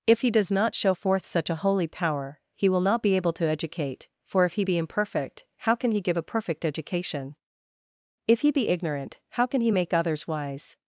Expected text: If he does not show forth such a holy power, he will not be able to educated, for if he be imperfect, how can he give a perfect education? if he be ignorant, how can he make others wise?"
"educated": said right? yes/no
no